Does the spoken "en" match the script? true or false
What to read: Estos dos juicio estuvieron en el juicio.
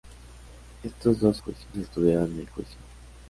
true